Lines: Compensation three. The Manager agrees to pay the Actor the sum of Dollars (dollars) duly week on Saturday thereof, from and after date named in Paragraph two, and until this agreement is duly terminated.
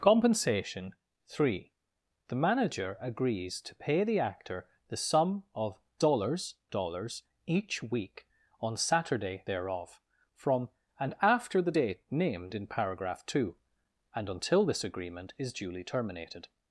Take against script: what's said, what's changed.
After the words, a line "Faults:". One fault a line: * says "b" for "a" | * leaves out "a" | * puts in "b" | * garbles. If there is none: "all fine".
Compensation three. The Manager agrees to pay the Actor the sum of Dollars (dollars) each week on Saturday thereof, from and after the date named in Paragraph two, and until this agreement is duly terminated.
Faults:
* says "each" for "duly"
* puts in "the"